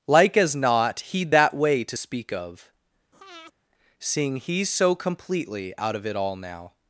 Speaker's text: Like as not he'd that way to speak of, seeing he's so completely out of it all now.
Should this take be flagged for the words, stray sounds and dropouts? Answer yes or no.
yes